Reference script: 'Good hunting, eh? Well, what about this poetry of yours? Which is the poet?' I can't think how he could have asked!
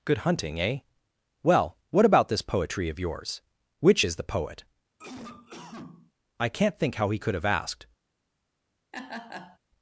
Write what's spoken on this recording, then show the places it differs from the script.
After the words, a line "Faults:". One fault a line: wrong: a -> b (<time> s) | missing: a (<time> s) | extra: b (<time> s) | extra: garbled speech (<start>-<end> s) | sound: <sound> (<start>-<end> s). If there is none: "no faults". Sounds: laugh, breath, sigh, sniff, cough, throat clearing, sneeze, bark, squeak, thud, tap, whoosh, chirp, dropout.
'Good hunting, eh? Well, what about this poetry of yours? Which is the poet?' I can't think how he could have asked!
Faults:
sound: cough (5.0-6.1 s)
sound: laugh (8.9-9.6 s)